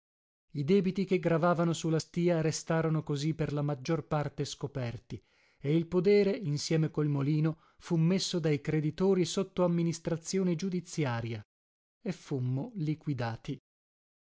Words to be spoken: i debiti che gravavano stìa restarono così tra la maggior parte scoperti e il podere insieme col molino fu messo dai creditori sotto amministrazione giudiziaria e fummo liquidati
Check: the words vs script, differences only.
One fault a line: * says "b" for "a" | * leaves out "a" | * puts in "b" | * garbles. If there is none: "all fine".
* puts in "su la"
* says "per" for "tra"